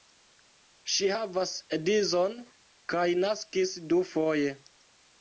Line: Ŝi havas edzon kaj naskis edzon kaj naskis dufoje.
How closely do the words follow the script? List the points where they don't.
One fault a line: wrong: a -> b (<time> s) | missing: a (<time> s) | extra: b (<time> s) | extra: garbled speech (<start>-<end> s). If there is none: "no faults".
missing: edzon kaj naskis (3.7 s)